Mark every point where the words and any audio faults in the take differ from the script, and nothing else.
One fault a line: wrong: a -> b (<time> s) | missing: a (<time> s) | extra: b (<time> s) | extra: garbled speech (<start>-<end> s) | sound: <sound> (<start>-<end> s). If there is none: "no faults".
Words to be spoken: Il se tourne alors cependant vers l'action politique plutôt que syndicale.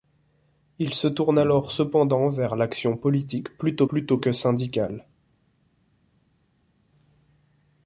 extra: plutôt (3.8 s)